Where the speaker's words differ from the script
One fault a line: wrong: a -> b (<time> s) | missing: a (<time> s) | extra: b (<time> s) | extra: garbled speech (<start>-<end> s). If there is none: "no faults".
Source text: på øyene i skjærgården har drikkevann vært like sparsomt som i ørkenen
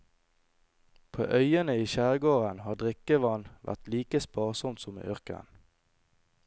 no faults